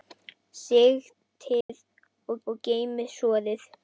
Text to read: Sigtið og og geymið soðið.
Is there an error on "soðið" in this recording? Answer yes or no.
no